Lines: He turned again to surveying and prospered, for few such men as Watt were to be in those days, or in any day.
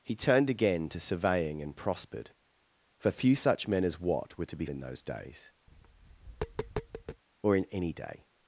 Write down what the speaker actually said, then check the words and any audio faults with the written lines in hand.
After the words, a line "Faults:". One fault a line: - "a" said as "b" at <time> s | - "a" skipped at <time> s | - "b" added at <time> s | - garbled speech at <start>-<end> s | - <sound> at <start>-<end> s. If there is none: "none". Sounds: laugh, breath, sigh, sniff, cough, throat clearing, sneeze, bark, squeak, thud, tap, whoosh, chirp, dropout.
He turned again to surveying and prospered, for few such men as Watt were to be in those days, or in any day.
Faults:
- tap at 5.7-7.2 s